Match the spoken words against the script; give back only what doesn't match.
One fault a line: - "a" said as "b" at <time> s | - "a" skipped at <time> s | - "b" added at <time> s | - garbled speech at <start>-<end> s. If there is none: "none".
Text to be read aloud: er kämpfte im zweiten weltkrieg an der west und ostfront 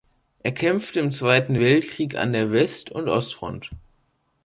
none